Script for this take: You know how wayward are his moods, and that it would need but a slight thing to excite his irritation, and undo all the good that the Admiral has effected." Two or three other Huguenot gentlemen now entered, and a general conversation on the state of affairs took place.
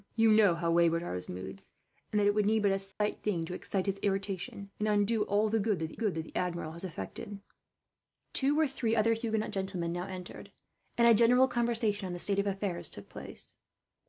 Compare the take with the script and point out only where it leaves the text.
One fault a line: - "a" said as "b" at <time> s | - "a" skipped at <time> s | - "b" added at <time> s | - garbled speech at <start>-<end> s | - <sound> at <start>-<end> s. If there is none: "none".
- dropout at 2.9-3.0 s
- "good that the" added at 5.9 s